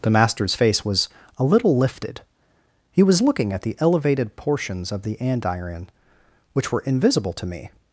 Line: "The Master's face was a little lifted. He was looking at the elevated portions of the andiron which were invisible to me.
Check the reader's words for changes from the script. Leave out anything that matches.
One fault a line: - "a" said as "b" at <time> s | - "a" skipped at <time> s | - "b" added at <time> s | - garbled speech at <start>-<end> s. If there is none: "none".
none